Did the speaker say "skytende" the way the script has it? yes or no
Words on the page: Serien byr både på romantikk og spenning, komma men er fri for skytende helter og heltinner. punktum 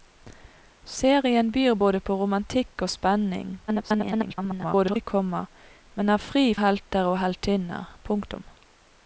no